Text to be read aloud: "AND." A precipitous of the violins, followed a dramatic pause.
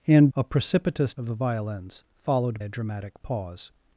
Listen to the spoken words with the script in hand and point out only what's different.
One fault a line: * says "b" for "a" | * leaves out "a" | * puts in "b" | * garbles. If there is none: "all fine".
all fine